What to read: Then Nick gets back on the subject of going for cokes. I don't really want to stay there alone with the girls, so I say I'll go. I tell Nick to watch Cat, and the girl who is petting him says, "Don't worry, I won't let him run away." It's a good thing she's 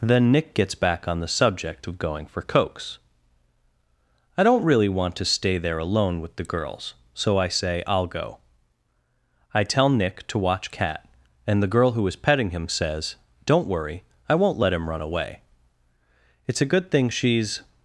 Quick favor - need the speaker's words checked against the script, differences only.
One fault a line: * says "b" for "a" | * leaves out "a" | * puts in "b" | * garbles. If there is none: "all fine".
all fine